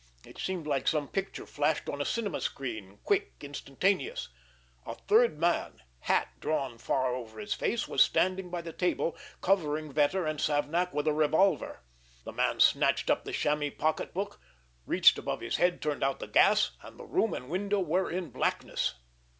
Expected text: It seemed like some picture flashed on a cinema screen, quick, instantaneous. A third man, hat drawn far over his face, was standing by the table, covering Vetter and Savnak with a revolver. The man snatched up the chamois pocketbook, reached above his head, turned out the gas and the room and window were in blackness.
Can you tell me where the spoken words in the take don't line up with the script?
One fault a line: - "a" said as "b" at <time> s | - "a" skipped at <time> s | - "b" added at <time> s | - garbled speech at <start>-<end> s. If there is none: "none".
none